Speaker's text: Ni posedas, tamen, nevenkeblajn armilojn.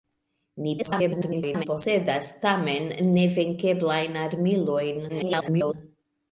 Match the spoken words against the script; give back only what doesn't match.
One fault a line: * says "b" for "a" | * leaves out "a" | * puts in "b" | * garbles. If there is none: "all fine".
* garbles
* garbles